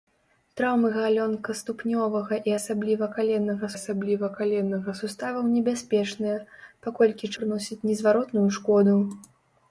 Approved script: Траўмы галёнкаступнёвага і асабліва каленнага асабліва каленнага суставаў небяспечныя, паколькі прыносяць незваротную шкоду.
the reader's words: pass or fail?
pass